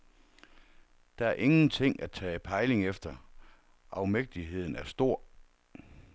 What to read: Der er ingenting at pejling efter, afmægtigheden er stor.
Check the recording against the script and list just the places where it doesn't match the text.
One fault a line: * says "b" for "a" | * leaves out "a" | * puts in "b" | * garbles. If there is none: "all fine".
* puts in "tage"